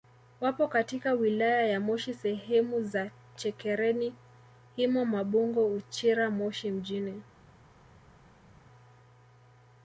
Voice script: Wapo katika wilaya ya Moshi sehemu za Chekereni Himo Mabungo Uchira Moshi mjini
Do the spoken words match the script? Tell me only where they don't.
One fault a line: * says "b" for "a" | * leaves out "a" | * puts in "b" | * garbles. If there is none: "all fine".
all fine